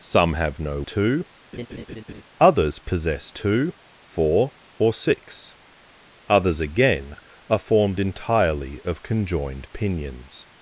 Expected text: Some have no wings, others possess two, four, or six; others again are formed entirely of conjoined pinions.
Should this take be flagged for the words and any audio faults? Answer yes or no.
yes